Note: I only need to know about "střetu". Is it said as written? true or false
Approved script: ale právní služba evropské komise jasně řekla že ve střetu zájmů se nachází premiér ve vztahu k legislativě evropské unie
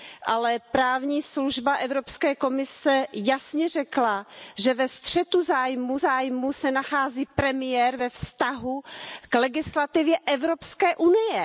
true